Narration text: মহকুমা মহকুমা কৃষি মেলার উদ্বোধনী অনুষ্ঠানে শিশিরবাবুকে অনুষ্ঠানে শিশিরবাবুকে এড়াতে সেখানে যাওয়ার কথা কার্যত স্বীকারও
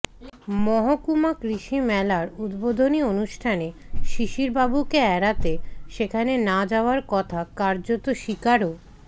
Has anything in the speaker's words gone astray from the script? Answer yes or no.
yes